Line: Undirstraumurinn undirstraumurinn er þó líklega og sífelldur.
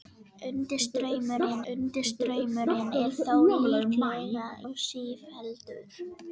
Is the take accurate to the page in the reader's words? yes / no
yes